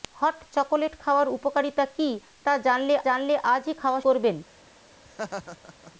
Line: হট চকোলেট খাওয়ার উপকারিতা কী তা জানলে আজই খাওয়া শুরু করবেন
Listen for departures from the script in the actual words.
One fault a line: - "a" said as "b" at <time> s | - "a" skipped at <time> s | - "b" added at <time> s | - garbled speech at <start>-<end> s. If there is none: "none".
- "জানলে" added at 3.1 s
- "শুরু" skipped at 4.0 s